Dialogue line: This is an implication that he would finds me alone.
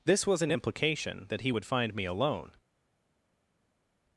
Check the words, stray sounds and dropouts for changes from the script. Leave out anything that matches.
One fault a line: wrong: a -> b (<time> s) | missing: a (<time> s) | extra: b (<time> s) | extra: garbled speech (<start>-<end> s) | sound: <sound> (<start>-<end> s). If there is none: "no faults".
wrong: is -> was (0.2 s)
wrong: finds -> find (1.6 s)